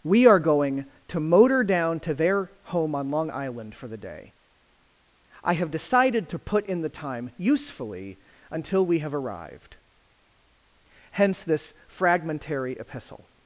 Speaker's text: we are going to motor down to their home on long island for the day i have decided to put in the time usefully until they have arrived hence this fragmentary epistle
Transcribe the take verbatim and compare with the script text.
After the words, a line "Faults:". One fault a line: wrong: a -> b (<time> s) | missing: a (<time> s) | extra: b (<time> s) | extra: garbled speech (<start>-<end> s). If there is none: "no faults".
we are going to motor down to their home on long island for the day i have decided to put in the time usefully until we have arrived hence this fragmentary epistle
Faults:
wrong: they -> we (8.8 s)